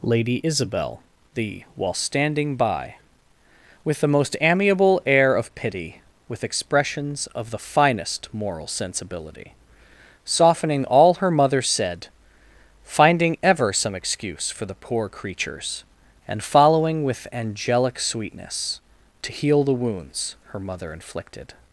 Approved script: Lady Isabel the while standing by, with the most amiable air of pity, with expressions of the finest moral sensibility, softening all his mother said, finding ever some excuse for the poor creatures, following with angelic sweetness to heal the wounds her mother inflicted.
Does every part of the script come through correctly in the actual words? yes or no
no